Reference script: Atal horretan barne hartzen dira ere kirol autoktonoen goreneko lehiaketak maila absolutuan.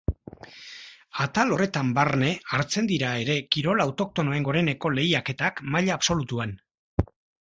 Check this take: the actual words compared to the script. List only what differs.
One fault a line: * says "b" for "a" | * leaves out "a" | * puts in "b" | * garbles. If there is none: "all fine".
all fine